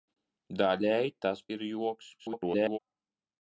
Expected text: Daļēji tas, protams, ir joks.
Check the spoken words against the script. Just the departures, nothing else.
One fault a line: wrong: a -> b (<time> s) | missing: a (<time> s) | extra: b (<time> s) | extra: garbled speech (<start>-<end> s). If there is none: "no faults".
missing: protams (1.4 s)
extra: garbled speech (2.2-2.8 s)